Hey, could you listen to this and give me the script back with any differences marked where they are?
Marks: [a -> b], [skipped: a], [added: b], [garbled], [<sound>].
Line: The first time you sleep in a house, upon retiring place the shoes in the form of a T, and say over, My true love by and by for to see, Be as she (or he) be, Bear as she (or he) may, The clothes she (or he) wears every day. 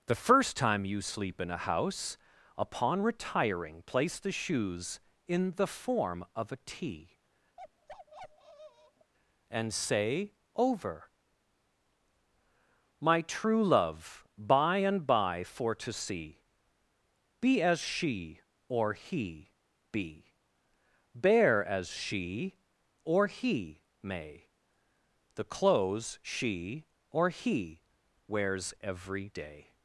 The first time you sleep in a house, upon retiring place the shoes in the form of a T, [bark] and say over, My true love by and by for to see, Be as she (or he) be, Bear as she (or he) may, The clothes she (or he) wears every day.